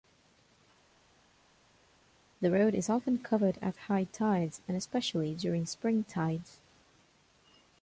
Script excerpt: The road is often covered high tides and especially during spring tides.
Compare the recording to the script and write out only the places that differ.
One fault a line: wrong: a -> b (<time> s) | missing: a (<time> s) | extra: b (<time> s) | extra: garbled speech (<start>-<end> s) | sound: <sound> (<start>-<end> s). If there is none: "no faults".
extra: at (3.6 s)